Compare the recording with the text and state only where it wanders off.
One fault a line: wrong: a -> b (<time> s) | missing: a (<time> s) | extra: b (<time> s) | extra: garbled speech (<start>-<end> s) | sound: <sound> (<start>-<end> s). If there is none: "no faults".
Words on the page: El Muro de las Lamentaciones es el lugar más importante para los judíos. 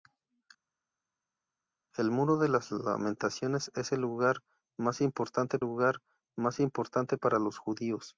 extra: lugar más importante (5.6 s)